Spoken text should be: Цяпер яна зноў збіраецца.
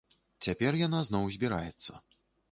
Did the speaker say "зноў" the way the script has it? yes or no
yes